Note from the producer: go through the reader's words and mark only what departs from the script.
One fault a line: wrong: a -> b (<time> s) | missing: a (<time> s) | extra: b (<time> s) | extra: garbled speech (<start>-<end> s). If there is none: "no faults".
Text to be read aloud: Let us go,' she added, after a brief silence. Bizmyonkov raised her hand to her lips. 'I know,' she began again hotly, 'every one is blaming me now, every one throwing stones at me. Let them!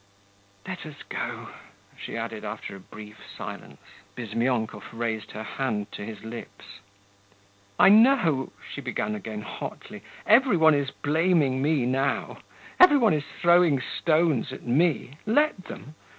wrong: her -> his (6.0 s)
extra: is (13.1 s)